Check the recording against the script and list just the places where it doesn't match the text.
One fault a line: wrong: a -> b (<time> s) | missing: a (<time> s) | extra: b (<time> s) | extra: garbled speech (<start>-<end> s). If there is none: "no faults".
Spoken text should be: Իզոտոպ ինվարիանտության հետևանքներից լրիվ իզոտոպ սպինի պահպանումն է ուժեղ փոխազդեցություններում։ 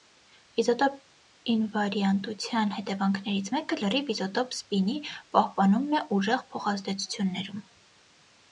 extra: մեկը (3.6 s)